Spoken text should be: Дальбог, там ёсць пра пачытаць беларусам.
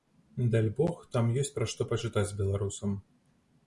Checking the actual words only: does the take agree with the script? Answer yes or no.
no